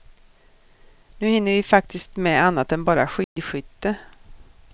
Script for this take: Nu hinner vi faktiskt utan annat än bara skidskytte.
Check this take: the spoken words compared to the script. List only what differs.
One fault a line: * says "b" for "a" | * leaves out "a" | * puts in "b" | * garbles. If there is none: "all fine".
* says "med" for "utan"